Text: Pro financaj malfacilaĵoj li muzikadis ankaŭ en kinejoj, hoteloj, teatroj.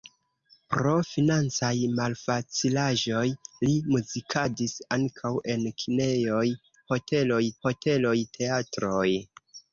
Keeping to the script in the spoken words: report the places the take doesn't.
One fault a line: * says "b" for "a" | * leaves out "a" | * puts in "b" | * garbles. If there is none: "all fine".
* puts in "hoteloj"